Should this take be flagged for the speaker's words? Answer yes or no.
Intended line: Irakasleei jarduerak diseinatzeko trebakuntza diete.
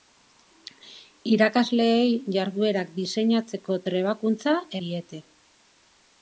no